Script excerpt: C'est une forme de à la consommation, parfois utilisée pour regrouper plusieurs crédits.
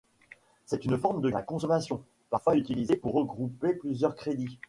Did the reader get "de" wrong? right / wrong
right